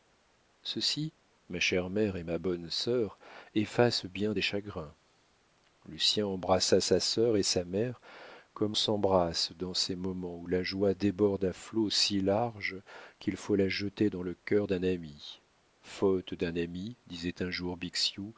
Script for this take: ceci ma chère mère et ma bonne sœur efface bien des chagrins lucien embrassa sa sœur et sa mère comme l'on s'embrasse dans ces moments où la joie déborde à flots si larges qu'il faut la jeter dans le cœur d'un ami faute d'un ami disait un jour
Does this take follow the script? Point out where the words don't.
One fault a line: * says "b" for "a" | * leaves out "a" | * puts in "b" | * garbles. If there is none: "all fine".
* leaves out "l'on"